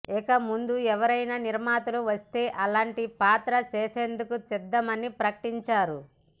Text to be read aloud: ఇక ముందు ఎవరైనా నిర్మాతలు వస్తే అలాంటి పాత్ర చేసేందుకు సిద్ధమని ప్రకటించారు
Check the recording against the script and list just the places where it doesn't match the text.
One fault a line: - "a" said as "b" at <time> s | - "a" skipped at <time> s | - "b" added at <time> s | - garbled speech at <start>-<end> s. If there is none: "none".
none